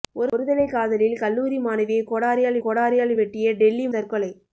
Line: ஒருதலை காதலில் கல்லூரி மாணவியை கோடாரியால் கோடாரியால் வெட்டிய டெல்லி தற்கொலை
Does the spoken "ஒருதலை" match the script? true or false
true